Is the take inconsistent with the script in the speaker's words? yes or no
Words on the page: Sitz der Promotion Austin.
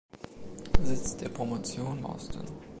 no